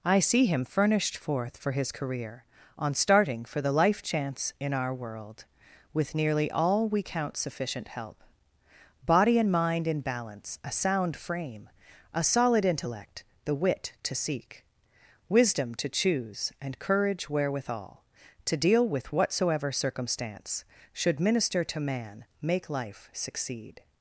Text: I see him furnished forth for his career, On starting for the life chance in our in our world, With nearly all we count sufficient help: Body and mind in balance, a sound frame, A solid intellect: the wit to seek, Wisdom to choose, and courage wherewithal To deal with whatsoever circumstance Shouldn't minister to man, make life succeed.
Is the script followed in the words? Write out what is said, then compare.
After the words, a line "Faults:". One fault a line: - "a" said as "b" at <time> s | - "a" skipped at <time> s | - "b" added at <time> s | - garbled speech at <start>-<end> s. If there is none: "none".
I see him furnished forth for his career, On starting for the life chance in our world, With nearly all we count sufficient help: Body and mind in balance, a sound frame, A solid intellect: the wit to seek, Wisdom to choose, and courage wherewithal To deal with whatsoever circumstance Should minister to man, make life succeed.
Faults:
- "in our" skipped at 4.9 s
- "Shouldn't" said as "Should" at 20.9 s